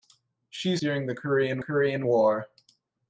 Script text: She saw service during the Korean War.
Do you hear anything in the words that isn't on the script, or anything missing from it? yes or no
yes